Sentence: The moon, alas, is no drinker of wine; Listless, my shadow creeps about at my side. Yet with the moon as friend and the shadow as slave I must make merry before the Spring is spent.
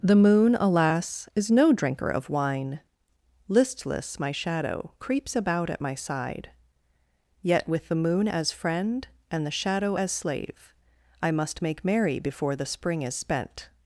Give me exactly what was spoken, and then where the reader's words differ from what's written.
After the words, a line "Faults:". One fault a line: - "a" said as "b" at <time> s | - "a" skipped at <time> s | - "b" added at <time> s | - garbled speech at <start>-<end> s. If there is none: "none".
The moon, alas, is no drinker of wine; Listless, my shadow creeps about at my side. Yet with the moon as friend and the shadow as slave I must make merry before the Spring is spent.
Faults:
none